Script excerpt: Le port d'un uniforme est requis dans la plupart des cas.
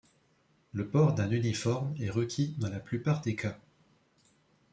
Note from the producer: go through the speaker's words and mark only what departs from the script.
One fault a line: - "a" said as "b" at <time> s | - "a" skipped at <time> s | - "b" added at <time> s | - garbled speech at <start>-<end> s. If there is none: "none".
none